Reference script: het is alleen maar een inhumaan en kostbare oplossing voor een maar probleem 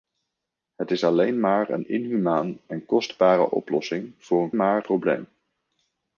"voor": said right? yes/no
yes